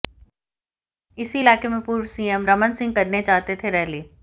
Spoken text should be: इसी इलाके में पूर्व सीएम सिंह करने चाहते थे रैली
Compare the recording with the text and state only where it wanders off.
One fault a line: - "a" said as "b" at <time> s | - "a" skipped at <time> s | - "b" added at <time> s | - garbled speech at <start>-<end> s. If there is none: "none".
- "रमन" added at 2.5 s